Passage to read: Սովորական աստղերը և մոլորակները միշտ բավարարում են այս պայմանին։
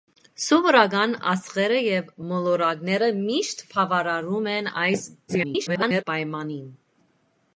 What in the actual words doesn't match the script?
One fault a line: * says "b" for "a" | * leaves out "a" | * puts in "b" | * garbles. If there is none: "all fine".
* garbles